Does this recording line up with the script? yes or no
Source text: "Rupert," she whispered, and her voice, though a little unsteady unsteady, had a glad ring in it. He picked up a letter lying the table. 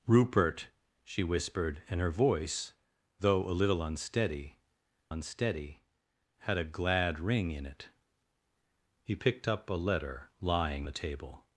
yes